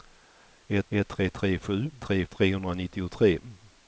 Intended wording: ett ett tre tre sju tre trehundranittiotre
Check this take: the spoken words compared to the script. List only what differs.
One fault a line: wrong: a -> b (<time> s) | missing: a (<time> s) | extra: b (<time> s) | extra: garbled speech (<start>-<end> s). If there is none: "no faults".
no faults